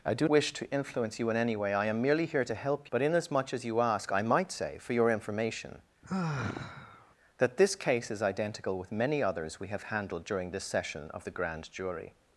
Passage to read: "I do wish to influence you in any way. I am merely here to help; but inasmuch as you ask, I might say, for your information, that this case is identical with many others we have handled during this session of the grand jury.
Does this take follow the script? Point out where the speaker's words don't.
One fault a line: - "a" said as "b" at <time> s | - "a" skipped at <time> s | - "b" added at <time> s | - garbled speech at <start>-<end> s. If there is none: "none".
none